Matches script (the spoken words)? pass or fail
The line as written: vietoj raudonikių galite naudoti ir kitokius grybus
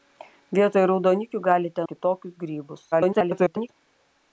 fail